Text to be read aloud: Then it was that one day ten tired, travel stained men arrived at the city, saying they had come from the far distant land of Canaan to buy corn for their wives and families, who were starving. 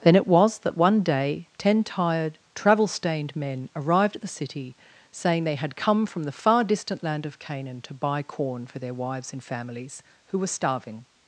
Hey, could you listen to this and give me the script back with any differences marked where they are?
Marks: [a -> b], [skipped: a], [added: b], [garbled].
Then it was that one day ten tired, travel stained men arrived at the city, saying they had come from the far distant land of Canaan to buy corn for their wives and families, who were starving.